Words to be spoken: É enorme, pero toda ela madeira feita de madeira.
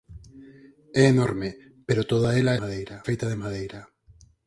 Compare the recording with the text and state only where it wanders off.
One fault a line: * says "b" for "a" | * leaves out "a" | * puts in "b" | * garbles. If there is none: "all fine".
all fine